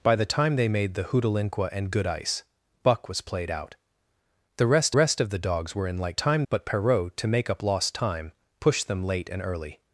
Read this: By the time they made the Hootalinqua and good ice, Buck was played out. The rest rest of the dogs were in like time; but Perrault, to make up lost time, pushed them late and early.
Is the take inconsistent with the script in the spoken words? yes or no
no